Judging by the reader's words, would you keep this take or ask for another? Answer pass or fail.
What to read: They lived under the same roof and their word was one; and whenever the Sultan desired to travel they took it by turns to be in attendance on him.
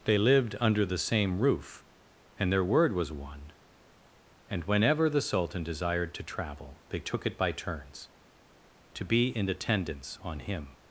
pass